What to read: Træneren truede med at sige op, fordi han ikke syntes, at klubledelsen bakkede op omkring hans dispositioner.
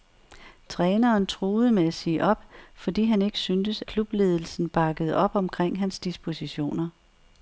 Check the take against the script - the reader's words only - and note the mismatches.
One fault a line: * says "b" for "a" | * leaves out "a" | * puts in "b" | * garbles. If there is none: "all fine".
* leaves out "at"